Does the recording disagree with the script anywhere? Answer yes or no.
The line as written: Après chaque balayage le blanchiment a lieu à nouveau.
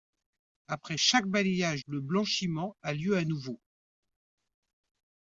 no